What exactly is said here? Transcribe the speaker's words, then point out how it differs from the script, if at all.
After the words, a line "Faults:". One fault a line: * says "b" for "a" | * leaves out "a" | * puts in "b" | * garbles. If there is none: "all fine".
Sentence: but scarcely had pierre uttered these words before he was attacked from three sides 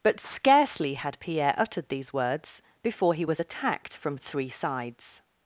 but scarcely had pierre uttered these words before he was attacked from three sides
Faults:
all fine